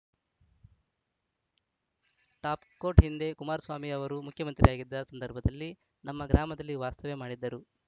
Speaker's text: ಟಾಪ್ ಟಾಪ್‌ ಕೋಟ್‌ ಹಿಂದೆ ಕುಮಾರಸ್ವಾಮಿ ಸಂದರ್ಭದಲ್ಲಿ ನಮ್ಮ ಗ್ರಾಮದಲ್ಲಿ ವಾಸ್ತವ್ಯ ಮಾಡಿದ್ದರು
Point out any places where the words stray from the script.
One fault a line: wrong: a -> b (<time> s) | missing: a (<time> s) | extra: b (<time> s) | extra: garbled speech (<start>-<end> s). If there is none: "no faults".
missing: ಟಾಪ್ (2.6 s)
extra: ಅವರು ಮುಖ್ಯಮಂತ್ರಿಯಾಗಿದ್ದ (3.9 s)